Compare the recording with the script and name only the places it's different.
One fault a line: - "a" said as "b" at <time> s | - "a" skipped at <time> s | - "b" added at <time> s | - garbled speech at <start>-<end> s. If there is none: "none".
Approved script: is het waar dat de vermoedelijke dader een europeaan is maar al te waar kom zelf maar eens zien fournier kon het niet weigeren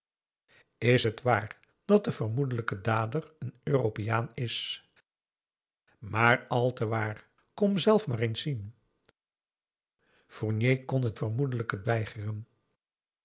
- "niet" said as "vermoedelijke" at 11.1 s